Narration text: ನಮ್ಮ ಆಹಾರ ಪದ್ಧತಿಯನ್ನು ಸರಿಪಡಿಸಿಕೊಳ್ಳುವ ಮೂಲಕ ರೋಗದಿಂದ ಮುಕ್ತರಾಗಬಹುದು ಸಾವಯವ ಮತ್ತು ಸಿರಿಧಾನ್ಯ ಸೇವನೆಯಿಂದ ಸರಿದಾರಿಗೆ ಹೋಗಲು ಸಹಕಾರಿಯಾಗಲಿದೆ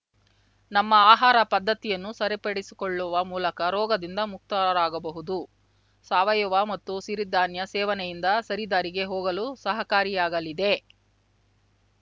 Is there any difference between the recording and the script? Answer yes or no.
no